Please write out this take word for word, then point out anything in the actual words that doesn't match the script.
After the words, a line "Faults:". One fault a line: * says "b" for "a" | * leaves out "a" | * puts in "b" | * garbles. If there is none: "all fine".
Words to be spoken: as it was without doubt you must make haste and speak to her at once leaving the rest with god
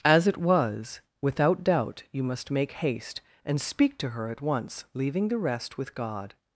as it was without doubt you must make haste and speak to her at once leaving the rest with god
Faults:
all fine